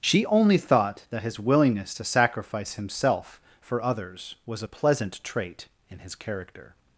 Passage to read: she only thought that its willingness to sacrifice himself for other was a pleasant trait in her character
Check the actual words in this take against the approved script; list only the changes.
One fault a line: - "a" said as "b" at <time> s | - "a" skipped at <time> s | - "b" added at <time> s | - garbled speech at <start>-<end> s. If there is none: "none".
- "its" said as "his" at 1.2 s
- "other" said as "others" at 3.8 s
- "her" said as "his" at 6.0 s